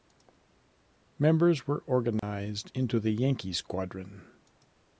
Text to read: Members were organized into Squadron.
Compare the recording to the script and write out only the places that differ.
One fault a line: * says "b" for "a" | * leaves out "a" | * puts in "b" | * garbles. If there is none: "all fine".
* puts in "the Yankee"